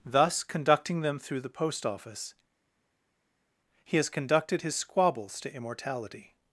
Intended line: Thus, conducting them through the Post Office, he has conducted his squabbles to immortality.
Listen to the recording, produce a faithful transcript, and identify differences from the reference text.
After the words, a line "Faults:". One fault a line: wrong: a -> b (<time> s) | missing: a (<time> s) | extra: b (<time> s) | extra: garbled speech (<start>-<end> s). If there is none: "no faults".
Thus, conducting them through the Post Office, he has conducted his squabbles to immortality.
Faults:
no faults